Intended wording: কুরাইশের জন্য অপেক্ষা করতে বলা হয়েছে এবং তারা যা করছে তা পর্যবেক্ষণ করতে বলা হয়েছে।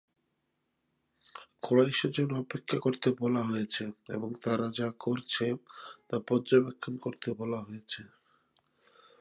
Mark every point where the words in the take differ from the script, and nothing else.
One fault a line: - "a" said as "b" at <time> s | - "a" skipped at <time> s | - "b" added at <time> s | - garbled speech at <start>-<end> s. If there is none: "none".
none